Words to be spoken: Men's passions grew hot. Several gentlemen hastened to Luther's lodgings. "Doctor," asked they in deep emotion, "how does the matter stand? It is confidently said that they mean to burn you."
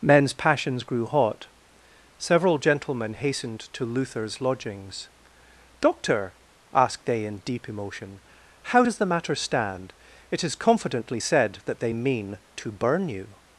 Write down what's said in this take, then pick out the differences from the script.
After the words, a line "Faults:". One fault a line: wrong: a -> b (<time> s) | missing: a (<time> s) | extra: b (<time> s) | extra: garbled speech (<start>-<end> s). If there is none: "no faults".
Men's passions grew hot. Several gentlemen hastened to Luther's lodgings. "Doctor," asked they in deep emotion, "how does the matter stand? It is confidently said that they mean to burn you."
Faults:
no faults